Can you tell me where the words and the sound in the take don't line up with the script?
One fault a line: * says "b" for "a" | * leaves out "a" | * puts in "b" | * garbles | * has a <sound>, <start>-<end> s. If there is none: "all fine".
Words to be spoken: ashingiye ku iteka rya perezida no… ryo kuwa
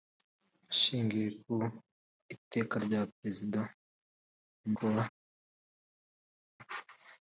* leaves out "no ryo"